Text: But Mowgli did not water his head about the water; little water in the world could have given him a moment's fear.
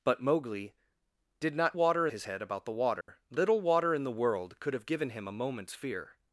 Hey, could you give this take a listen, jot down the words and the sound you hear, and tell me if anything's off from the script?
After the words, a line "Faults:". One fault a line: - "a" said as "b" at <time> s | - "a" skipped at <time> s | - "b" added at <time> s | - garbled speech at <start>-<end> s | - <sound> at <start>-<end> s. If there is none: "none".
But Mowgli did not water his head about the water; little water in the world could have given him a moment's fear.
Faults:
- dropout at 3.0-3.1 s